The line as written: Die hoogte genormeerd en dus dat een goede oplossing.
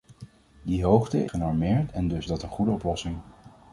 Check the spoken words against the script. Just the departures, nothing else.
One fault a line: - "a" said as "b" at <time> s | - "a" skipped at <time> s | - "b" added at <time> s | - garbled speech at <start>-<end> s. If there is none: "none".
none